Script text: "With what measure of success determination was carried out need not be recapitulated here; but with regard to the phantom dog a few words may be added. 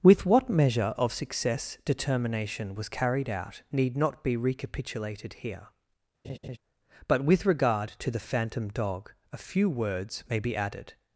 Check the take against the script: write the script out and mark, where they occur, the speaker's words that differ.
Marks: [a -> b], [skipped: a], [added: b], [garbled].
"With what measure of success determination was carried out need not be recapitulated here; but with regard to the phantom dog a few words may be added.